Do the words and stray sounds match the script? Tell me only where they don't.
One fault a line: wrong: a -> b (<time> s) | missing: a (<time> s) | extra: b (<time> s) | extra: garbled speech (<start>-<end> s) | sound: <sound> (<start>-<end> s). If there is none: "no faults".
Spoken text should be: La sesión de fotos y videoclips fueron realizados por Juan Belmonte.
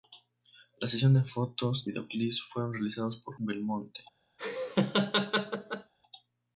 missing: y (1.8 s)
missing: Juan (3.4 s)
sound: laugh (4.4-5.9 s)